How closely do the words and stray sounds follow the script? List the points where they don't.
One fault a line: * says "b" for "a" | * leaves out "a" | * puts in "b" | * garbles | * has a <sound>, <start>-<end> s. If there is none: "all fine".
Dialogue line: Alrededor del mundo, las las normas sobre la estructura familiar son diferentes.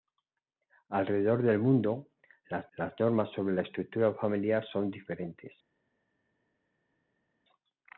all fine